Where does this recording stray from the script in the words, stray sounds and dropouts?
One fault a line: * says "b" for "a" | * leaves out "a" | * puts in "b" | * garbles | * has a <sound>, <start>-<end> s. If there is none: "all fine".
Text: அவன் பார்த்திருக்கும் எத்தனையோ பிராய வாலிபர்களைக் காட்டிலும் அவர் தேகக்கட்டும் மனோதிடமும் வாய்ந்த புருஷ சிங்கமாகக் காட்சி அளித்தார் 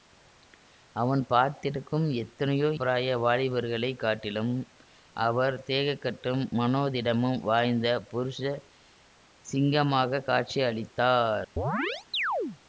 * has a chirp, 11.6-12.6 s